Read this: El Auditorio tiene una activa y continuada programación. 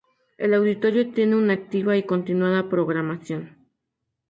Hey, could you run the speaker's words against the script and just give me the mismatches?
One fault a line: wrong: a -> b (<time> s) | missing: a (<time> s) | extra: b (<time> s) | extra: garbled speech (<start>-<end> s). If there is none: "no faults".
no faults